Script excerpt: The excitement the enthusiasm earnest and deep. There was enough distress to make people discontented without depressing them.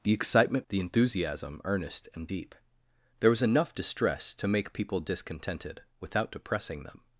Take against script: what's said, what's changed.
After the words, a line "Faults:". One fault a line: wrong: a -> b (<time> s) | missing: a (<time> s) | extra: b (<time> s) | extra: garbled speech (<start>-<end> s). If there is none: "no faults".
The excitement the enthusiasm earnest and deep. There was enough distress to make people discontented without depressing them.
Faults:
no faults